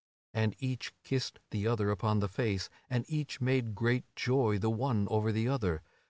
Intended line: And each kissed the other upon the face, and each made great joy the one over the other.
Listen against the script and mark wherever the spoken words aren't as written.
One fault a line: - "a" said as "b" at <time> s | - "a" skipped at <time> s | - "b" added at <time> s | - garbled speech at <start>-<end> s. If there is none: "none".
none